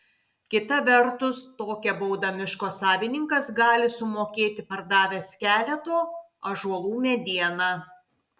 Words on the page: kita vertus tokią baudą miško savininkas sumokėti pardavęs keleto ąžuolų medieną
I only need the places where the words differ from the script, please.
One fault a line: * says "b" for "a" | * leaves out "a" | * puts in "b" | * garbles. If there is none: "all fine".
* puts in "gali"